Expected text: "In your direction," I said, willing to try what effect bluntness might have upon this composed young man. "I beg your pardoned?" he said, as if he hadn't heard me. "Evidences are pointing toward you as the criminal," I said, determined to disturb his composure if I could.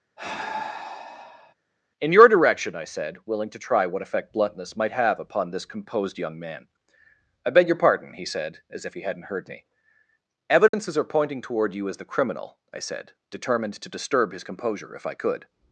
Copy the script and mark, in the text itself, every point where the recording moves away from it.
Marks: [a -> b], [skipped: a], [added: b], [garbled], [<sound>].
[sigh] "In your direction," I said, willing to try what effect bluntness might have upon this composed young man. "I beg your [pardoned?" -> pardon] he said, as if he hadn't heard me. "Evidences [dropout] are pointing toward you as the criminal," I said, determined to disturb his composure if I could.